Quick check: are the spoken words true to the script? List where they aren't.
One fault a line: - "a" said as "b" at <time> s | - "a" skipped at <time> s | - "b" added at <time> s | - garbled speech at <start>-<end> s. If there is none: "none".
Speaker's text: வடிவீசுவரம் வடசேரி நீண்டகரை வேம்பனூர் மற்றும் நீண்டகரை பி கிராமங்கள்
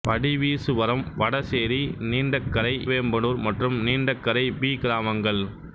none